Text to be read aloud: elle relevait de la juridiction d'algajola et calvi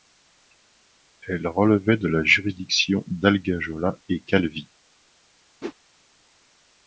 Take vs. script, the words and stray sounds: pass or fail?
fail